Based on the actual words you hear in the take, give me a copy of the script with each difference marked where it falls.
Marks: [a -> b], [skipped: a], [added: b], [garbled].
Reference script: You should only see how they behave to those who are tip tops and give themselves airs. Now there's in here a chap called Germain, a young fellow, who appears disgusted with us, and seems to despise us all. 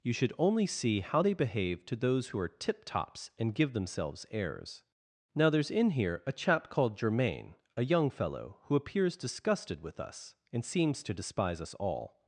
You should only see how they behave to those who are tip tops and give themselves airs. Now there's in here a chap called Germain, a young fellow, who appears disgusted with us, and seems to despise us all.